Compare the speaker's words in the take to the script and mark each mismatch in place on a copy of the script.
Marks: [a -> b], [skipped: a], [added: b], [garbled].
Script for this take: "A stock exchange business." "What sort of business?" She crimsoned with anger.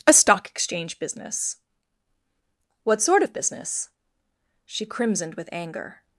"A stock exchange business." "What sort of business?" She crimsoned with anger.